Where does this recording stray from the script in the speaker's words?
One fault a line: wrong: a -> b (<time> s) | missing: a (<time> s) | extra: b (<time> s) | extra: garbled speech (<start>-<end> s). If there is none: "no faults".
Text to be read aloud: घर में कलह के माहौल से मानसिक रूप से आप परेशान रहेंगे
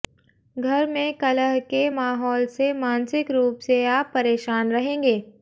no faults